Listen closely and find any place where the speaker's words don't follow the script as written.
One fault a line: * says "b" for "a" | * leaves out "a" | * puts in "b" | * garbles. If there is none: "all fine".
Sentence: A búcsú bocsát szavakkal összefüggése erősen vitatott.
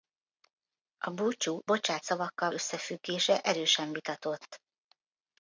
all fine